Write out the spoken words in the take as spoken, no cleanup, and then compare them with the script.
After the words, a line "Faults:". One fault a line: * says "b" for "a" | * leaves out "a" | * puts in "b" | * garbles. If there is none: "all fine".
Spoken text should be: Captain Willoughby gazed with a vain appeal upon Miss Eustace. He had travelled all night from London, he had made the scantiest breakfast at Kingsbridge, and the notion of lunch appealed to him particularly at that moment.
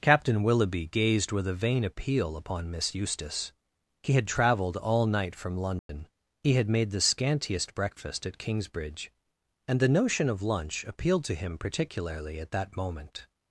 Captain Willoughby gazed with a vain appeal upon Miss Eustace. He had travelled all night from London, he had made the scantiest breakfast at Kingsbridge, and the notion of lunch appealed to him particularly at that moment.
Faults:
all fine